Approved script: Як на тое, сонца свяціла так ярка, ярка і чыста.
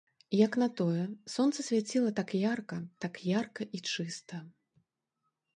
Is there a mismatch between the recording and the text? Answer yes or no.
yes